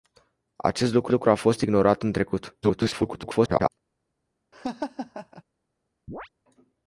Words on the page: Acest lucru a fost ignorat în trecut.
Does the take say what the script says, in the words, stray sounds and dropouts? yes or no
no